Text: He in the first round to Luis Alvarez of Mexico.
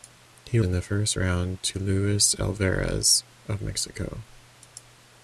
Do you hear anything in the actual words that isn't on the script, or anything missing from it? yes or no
no